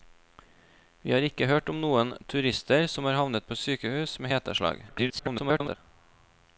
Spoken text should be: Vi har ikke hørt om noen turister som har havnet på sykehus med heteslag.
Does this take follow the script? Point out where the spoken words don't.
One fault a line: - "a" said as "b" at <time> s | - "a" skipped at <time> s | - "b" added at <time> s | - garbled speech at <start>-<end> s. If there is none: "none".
- garbled speech at 4.9-5.8 s